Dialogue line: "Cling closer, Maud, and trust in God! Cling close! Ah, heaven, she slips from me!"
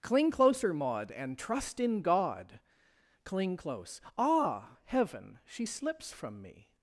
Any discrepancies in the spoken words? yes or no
no